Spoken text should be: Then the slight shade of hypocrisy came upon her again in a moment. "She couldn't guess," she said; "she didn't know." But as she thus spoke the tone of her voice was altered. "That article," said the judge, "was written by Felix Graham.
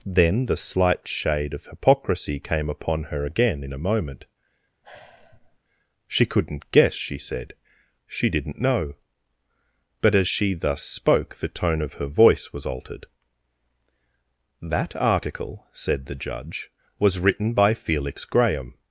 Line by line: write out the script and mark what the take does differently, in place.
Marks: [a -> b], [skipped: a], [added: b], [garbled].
Then the slight shade of hypocrisy came upon her again in a moment. "She couldn't guess," she said; "she didn't know." But as she thus spoke the tone of her voice was altered. "That article," said the judge, "was written by Felix Graham.